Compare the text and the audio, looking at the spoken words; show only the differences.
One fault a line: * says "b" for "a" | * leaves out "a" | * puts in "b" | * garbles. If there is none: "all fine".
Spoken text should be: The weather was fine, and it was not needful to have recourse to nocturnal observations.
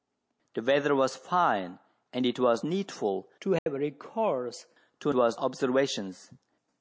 * leaves out "not"
* says "was" for "nocturnal"